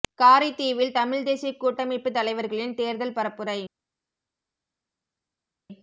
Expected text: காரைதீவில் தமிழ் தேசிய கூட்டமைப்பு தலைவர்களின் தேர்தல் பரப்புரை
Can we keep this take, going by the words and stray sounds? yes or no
yes